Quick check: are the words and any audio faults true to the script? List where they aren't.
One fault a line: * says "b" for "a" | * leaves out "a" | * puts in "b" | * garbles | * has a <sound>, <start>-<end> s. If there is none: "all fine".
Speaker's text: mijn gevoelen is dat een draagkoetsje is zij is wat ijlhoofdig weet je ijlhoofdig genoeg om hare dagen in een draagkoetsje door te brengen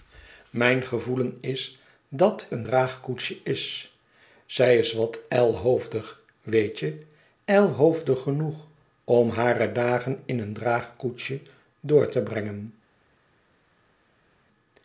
all fine